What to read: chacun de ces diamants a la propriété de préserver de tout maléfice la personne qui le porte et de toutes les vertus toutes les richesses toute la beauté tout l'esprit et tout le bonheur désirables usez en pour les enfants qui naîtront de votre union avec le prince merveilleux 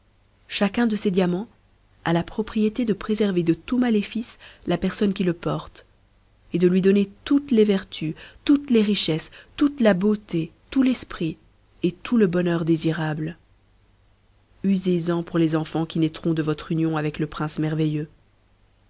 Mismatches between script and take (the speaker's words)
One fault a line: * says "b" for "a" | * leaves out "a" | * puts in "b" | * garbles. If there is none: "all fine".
* puts in "lui donner"